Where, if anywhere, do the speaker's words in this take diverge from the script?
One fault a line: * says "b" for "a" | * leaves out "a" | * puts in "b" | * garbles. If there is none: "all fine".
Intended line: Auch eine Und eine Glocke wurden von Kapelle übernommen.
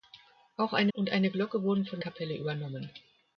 all fine